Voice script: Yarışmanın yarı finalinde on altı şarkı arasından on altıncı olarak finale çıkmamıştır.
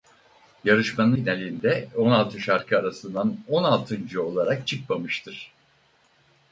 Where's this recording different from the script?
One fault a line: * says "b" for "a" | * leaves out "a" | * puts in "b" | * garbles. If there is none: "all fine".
* leaves out "yarı"
* leaves out "finale"